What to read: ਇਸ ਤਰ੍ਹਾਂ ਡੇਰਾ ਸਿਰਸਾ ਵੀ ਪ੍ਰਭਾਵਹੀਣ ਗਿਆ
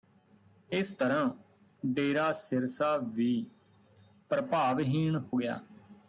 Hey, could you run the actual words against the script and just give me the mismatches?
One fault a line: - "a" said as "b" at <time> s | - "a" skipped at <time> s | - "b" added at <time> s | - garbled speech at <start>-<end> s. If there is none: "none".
none